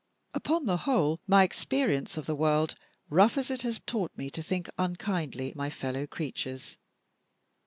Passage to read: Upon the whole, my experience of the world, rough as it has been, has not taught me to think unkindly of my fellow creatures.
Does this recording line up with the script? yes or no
no